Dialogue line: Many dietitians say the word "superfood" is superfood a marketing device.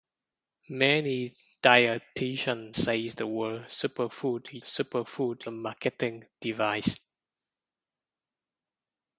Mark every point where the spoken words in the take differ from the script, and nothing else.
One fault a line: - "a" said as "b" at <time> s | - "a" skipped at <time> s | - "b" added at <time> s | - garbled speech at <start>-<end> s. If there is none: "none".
none